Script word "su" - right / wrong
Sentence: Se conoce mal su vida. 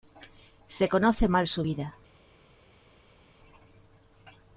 right